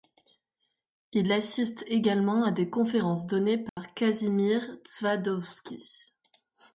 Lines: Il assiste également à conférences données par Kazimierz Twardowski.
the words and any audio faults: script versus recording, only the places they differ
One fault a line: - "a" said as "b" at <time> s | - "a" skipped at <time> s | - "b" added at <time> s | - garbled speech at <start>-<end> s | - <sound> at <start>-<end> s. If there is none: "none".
- "des" added at 2.5 s
- dropout at 3.7-3.8 s